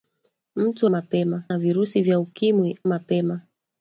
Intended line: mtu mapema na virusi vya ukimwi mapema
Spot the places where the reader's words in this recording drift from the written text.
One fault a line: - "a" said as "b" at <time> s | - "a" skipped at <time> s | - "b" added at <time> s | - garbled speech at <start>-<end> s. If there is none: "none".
none